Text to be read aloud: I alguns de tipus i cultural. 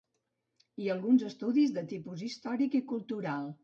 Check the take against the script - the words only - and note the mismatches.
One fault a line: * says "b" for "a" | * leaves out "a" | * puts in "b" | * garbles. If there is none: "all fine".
* puts in "estudis"
* puts in "històric"